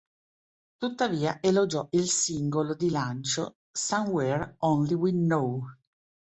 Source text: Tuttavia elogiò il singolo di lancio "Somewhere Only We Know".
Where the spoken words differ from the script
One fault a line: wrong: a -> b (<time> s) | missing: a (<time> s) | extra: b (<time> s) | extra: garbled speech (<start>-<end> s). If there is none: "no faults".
no faults